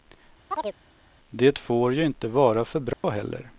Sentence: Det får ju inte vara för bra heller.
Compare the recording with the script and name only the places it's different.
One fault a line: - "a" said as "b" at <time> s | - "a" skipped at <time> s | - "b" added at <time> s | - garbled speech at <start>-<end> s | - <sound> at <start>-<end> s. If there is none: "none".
- chirp at 0.5-0.8 s
- dropout at 2.9-3.0 s